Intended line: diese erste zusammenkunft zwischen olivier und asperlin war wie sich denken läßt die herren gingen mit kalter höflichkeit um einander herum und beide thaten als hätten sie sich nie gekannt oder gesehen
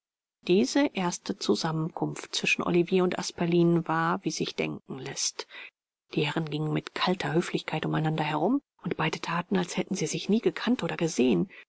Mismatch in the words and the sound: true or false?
false